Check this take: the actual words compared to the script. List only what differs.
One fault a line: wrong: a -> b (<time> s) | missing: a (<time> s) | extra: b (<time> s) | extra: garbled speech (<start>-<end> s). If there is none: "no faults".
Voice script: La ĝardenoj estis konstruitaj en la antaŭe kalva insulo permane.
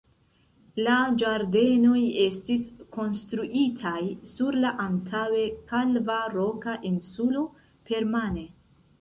wrong: en -> sur (4.3 s)
extra: roka (6.4 s)